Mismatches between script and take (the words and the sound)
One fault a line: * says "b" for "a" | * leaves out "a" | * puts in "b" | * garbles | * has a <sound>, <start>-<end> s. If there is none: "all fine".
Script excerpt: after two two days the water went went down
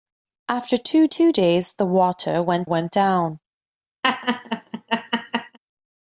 * has a laugh, 4.0-5.6 s